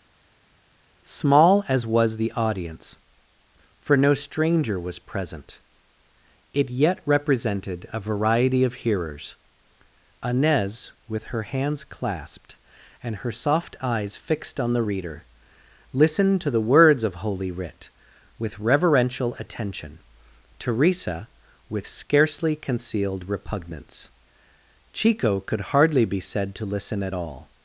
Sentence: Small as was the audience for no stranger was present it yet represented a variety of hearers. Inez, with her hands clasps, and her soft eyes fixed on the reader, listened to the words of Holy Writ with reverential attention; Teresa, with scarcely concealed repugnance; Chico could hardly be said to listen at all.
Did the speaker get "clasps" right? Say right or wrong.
wrong